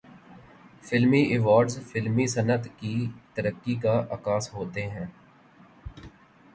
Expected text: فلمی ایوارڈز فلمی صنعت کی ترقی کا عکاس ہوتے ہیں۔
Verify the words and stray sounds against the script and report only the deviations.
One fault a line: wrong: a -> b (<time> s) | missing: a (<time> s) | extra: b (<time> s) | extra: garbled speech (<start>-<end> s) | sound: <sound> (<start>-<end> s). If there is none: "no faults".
no faults